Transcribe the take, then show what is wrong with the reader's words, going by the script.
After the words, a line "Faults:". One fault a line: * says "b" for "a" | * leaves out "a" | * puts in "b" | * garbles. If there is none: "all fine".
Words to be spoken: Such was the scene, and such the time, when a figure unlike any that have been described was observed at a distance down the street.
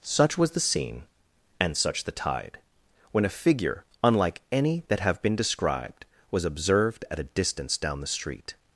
Such was the scene, and such the tide, when a figure unlike any that have been described was observed at a distance down the street.
Faults:
* says "tide" for "time"